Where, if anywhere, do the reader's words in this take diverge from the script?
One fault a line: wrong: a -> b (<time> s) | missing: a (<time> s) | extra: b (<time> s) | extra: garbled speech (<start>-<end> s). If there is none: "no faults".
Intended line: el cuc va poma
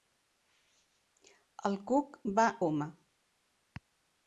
no faults